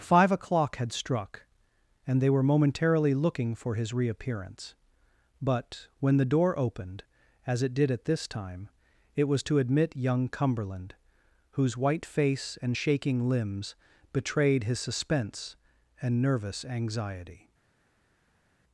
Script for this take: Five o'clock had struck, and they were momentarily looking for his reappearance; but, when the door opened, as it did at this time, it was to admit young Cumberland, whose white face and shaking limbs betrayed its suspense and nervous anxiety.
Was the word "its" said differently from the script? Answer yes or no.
yes